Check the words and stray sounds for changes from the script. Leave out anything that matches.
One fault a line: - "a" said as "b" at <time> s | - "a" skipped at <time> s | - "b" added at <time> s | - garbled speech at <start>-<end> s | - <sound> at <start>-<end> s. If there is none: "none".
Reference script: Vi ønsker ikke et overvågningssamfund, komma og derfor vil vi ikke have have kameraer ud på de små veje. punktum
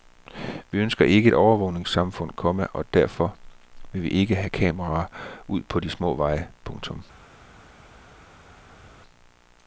- "have" skipped at 4.5 s